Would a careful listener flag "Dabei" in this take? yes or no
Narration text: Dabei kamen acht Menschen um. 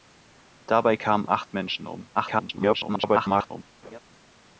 no